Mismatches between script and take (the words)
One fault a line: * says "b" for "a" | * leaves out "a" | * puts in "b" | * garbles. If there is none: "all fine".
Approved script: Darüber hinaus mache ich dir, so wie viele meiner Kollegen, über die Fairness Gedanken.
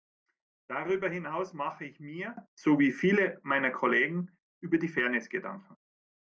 * says "mir" for "dir"